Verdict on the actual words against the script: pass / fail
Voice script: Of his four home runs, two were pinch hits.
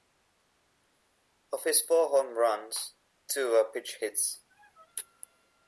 pass